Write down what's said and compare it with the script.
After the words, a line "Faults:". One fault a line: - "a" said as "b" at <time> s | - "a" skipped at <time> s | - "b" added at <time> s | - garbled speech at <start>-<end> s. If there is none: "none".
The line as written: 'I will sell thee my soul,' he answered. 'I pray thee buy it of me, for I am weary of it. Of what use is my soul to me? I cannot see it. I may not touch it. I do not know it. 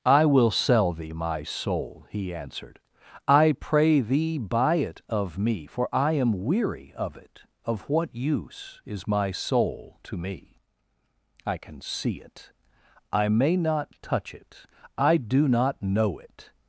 'I will sell thee my soul,' he answered. 'I pray thee buy it of me, for I am weary of it. Of what use is my soul to me? I can see it. I may not touch it. I do not know it.
Faults:
- "cannot" said as "can" at 11.6 s